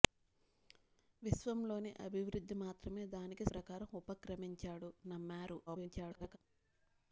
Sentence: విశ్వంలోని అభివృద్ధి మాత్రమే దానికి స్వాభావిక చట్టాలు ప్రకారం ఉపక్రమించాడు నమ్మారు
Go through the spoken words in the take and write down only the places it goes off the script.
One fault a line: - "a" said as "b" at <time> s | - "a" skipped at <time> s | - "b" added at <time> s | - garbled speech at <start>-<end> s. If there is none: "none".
- "స్వాభావిక చట్టాలు" skipped at 3.5 s
- garbled speech at 5.7-6.4 s